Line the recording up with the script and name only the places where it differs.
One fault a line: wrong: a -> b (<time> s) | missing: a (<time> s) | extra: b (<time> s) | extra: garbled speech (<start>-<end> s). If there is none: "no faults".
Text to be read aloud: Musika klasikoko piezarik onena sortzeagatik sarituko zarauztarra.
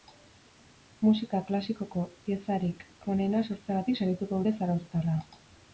extra: dute (4.4 s)